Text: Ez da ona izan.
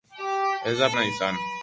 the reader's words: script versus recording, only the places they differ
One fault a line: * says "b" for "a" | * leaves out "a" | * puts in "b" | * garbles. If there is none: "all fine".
all fine